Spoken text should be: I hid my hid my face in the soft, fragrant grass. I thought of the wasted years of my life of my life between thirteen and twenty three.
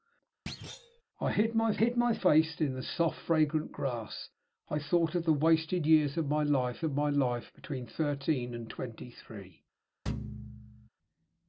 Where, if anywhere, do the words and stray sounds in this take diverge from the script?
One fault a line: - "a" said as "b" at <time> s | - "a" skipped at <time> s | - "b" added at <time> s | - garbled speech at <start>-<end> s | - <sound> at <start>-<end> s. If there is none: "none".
- thud at 0.5-1.0 s
- thud at 10.1-10.9 s